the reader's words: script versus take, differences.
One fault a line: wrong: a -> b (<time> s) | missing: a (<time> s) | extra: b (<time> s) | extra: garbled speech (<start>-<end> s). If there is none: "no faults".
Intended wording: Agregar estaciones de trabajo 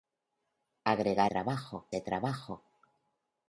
wrong: estaciones -> trabajo (1.3 s)